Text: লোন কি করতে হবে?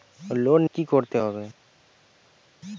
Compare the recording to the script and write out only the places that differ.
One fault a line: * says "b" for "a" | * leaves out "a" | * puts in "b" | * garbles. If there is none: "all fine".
all fine